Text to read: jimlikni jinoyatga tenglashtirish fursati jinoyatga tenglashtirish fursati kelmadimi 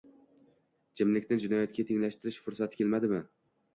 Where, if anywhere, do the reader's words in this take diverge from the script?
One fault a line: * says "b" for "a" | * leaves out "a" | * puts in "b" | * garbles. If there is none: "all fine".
* leaves out "jinoyatga tenglashtirish fursati"